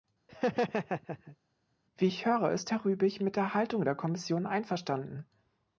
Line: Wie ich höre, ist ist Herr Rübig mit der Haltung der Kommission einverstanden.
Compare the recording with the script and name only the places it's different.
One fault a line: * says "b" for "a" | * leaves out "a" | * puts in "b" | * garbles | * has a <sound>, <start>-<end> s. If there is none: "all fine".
* has a laugh, 0.3-1.4 s
* leaves out "ist"